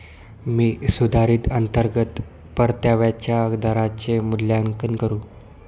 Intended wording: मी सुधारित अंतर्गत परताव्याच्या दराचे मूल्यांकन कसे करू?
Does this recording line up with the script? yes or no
no